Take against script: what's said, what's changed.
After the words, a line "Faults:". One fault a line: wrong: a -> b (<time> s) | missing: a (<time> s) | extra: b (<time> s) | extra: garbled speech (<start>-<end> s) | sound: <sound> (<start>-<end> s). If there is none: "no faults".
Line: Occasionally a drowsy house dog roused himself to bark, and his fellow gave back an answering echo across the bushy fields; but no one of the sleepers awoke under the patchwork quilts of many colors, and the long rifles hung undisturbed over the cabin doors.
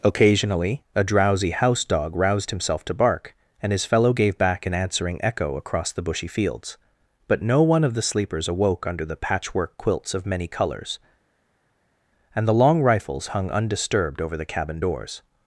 Occasionally a drowsy house dog roused himself to bark, and his fellow gave back an answering echo across the bushy fields; but no one of the sleepers awoke under the patchwork quilts of many colors, and the long rifles hung undisturbed over the cabin doors.
Faults:
no faults